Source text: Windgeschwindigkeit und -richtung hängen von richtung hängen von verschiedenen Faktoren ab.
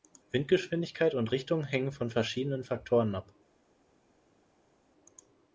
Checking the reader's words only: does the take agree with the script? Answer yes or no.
no